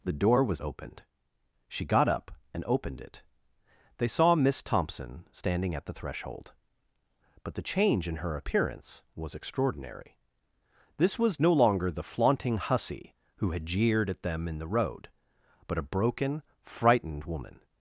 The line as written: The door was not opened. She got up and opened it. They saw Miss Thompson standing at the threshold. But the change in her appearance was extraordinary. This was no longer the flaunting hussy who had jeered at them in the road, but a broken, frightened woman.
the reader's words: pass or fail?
fail